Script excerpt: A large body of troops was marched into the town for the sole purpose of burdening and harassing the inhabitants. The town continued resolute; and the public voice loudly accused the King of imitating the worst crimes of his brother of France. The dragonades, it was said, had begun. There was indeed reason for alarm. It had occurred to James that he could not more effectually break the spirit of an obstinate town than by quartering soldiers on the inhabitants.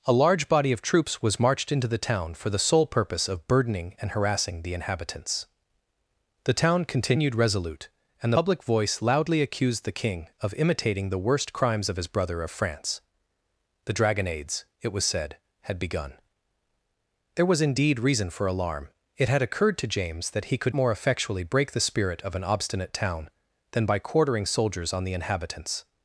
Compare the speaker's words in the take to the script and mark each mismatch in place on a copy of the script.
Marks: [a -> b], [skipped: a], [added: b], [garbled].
A large body of troops was marched into the town for the sole purpose of burdening and harassing the inhabitants. The town continued resolute; and [skipped: the] public voice loudly accused the King of imitating the worst crimes of his brother of France. The dragonades, it was said, had begun. There was indeed reason for alarm. It had occurred to James that he could [skipped: not] more effectually break the spirit of an obstinate town than by quartering soldiers on the inhabitants.